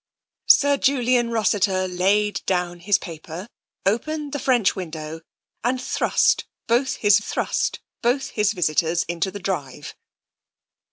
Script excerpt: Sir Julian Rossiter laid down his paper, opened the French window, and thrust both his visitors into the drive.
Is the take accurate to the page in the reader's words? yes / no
no